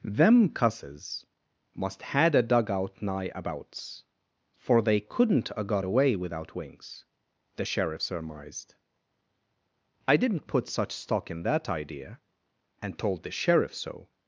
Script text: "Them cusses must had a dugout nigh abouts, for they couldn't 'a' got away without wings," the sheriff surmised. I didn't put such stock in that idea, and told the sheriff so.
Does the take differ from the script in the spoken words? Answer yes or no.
no